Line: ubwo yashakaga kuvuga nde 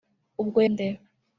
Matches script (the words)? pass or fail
fail